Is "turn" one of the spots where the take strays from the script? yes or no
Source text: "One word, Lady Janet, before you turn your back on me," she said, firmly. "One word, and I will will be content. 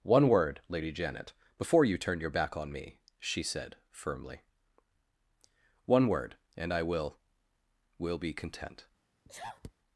no